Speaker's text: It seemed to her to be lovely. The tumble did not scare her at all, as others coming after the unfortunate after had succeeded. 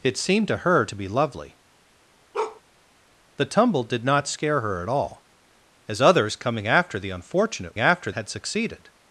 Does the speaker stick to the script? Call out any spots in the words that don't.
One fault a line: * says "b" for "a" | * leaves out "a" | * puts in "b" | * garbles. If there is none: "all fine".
all fine